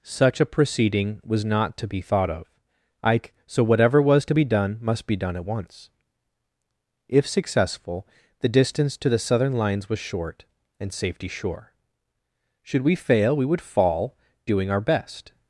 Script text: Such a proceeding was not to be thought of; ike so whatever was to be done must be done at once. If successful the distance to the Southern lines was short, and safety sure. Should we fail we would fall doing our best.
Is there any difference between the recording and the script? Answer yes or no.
no